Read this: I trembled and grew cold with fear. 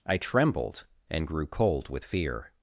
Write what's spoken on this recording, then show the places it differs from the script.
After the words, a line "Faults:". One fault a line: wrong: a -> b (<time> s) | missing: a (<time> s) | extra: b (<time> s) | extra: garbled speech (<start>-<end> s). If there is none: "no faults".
I trembled and grew cold with fear.
Faults:
no faults